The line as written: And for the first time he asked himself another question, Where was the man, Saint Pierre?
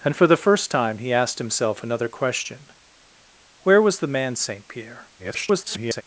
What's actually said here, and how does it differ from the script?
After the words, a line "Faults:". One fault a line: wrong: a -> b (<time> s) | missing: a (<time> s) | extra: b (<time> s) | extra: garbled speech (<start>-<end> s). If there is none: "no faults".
And for the first time he asked himself another question, Where was the man, Saint Pierre? [garbled]
Faults:
extra: garbled speech (5.2-6.0 s)